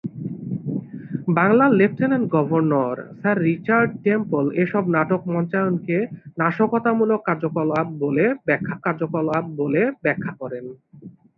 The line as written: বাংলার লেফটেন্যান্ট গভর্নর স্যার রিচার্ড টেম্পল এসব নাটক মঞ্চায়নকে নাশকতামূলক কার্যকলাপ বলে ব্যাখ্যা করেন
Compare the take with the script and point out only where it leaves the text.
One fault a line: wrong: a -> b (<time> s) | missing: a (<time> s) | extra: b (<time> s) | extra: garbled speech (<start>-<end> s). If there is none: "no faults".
extra: কার্যকলাপ বলে ব্যাখ্যা (8.9 s)